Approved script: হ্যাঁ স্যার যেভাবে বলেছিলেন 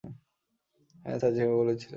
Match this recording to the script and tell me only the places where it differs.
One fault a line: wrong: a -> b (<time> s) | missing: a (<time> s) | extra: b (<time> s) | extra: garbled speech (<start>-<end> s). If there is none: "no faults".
no faults